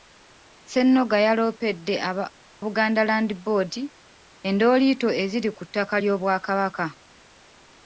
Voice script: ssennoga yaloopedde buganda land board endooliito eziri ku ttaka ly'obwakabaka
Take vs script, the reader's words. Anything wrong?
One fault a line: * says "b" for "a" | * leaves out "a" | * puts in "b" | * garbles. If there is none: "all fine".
all fine